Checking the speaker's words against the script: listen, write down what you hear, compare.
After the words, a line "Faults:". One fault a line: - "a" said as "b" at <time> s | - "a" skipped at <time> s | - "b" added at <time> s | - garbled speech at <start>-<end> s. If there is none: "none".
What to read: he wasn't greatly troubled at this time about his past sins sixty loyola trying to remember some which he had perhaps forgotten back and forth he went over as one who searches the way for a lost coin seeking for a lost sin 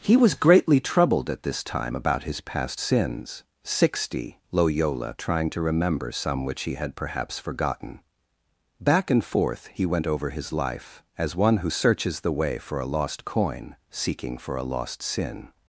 he was greatly troubled at this time about his past sins sixty loyola trying to remember some which he had perhaps forgotten back and forth he went over his life as one who searches the way for a lost coin seeking for a lost sin
Faults:
- "wasn't" said as "was" at 0.2 s
- "his life" added at 10.3 s